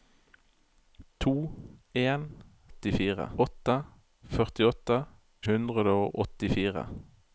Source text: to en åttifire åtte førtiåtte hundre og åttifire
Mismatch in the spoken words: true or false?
false